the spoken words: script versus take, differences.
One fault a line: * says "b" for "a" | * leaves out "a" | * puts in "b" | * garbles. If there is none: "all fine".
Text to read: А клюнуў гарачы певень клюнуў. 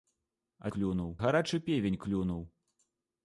all fine